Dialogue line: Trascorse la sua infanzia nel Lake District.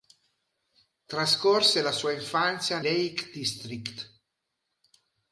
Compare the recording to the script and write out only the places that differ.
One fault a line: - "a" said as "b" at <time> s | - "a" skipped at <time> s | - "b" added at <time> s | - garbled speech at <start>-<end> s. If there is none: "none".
- "nel" skipped at 2.8 s